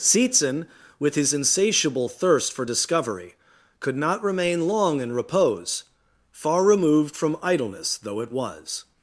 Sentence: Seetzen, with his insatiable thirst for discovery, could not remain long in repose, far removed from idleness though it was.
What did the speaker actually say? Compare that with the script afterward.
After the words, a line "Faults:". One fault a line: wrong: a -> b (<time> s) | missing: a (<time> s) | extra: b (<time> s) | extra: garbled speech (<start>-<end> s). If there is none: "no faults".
Seetzen, with his insatiable thirst for discovery, could not remain long in repose, far removed from idleness though it was.
Faults:
no faults